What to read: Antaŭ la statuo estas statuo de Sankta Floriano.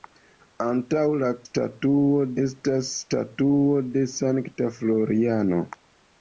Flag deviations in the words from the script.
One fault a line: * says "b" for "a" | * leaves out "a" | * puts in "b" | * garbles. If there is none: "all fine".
all fine